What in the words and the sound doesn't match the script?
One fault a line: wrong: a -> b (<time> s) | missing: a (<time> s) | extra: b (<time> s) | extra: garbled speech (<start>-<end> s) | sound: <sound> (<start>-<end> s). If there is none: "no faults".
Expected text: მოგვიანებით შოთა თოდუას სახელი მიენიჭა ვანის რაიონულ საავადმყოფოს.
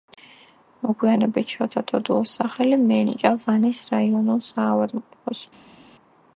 no faults